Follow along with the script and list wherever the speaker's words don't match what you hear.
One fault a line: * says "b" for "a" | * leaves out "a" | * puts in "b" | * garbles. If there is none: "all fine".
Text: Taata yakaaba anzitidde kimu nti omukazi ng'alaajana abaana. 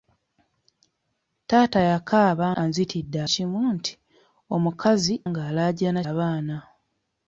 all fine